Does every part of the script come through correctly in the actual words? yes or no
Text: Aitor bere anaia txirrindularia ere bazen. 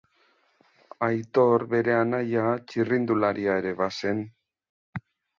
yes